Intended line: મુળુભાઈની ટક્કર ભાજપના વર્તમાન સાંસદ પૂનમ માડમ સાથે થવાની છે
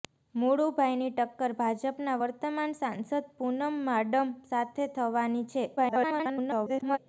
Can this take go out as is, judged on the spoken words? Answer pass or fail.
fail